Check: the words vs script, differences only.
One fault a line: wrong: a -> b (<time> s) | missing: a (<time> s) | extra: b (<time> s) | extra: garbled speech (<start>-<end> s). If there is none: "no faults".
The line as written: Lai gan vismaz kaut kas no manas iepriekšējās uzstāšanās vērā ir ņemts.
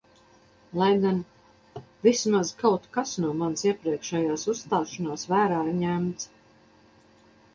no faults